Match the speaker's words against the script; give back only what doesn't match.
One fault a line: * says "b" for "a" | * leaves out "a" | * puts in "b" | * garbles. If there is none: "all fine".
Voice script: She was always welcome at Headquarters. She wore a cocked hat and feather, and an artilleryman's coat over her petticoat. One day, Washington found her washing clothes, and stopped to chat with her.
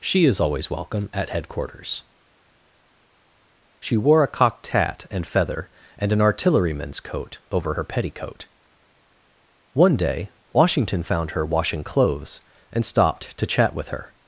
* says "is" for "was"